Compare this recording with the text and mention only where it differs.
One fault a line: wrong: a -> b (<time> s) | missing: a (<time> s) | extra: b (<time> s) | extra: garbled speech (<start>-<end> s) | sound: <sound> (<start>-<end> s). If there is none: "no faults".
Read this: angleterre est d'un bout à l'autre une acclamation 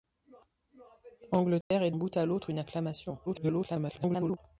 sound: dropout (1.6-1.7 s)
missing: d'un (1.9 s)
extra: garbled speech (3.3-4.4 s)